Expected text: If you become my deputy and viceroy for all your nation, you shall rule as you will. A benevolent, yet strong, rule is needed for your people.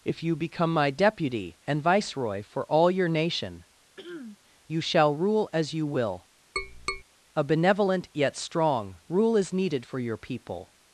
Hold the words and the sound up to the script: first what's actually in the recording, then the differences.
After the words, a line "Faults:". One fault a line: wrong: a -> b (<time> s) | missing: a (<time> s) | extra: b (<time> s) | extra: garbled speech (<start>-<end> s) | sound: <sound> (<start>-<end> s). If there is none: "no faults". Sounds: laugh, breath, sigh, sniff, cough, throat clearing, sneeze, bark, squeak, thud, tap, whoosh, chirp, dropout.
If you become my deputy and viceroy for all your nation, you shall rule as you will. A benevolent, yet strong, rule is needed for your people.
Faults:
sound: throat clearing (4.0-4.4 s)
sound: tap (6.6-7.0 s)